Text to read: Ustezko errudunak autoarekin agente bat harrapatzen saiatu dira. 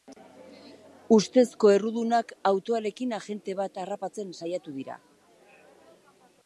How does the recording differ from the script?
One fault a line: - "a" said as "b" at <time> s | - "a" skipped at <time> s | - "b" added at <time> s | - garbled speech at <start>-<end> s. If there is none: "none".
none